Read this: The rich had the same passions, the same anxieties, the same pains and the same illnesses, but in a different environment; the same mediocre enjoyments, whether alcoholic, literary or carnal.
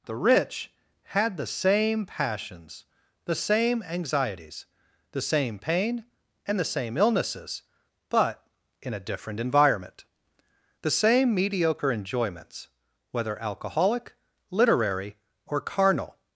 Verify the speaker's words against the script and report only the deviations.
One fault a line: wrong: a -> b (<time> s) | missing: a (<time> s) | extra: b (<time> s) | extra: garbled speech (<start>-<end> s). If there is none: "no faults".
wrong: pains -> pain (5.6 s)